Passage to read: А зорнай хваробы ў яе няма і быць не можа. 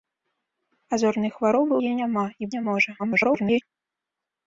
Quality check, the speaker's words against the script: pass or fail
fail